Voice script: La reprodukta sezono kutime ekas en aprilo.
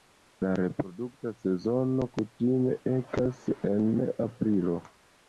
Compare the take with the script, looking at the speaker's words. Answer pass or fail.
pass